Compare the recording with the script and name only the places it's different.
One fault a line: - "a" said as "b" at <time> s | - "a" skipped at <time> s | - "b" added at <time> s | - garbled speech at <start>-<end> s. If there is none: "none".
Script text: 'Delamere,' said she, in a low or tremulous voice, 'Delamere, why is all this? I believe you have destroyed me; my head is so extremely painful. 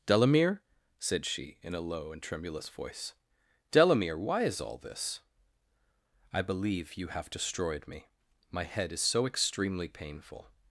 - "or" said as "and" at 2.1 s